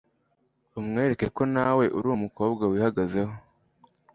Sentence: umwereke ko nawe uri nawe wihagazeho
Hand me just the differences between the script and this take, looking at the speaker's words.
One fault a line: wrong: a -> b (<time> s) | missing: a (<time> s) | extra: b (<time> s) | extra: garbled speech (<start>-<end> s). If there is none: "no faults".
wrong: nawe -> umukobwa (2.1 s)